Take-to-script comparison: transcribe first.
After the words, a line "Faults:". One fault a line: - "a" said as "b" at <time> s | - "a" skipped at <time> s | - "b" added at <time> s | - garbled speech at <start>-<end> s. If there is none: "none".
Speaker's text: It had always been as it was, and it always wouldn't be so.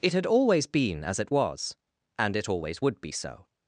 It had always been as it was, and it always would be so.
Faults:
- "wouldn't" said as "would" at 2.8 s